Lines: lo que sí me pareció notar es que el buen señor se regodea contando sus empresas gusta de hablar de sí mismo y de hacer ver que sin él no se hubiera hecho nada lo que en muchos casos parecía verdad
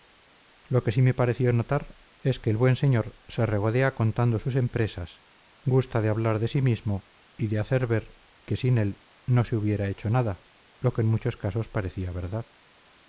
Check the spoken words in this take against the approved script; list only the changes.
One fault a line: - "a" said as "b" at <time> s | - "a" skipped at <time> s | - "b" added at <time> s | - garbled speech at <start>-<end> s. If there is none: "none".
none